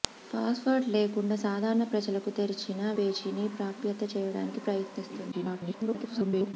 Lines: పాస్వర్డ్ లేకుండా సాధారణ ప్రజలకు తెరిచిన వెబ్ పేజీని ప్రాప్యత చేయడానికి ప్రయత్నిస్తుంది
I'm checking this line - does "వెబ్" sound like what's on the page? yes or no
no